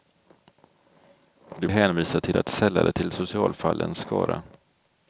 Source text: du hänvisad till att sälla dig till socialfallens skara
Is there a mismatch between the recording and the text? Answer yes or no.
no